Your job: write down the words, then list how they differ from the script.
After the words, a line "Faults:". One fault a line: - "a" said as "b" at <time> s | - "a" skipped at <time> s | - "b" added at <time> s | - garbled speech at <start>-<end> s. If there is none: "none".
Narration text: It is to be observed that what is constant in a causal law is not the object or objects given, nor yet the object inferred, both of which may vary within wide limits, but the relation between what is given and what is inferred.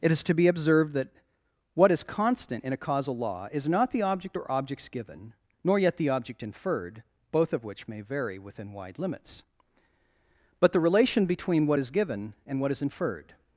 It is to be observed that what is constant in a causal law is not the object or objects given, nor yet the object inferred, both of which may vary within wide limits, but the relation between what is given and what is inferred.
Faults:
none